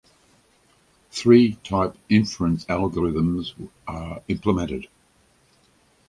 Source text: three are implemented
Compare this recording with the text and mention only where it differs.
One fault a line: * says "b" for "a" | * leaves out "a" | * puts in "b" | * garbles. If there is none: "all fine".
* puts in "type inference algorithms"